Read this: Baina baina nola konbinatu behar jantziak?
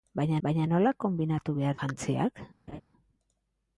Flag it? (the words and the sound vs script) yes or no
yes